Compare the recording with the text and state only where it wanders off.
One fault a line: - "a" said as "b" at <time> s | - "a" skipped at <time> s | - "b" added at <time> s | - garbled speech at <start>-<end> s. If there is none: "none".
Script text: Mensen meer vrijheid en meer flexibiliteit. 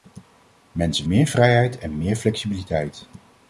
none